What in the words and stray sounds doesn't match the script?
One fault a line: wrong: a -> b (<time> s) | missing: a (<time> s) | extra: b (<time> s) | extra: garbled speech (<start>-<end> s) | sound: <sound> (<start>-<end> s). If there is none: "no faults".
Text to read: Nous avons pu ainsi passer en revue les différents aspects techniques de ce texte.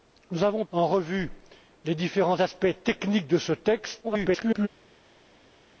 missing: pu ainsi passer (0.7 s)
extra: garbled speech (4.0-4.7 s)